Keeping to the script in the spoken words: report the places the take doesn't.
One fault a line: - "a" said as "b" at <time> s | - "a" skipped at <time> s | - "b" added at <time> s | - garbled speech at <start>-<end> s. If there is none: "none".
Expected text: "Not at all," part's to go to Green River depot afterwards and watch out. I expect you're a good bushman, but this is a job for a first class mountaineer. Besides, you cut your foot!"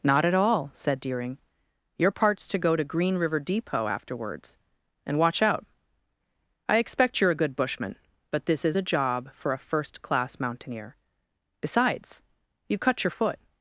- "said Deering Your" added at 0.7 s